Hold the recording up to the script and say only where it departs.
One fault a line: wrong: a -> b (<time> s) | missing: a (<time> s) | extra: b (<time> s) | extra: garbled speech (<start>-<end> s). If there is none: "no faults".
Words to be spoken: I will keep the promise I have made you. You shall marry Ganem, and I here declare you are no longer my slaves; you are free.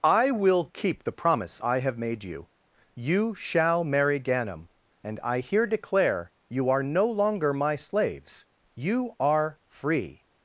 no faults